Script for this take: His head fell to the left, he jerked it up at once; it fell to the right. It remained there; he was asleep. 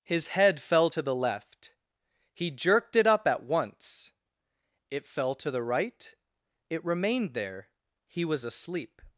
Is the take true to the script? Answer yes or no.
yes